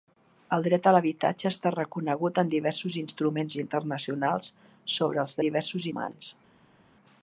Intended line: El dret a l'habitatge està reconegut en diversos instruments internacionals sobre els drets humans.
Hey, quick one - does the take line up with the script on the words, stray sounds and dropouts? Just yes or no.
no